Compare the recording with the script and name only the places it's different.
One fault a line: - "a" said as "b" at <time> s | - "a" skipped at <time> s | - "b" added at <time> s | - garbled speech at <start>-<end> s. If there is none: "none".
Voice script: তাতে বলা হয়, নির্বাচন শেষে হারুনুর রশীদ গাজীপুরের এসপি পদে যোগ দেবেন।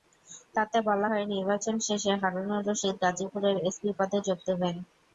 none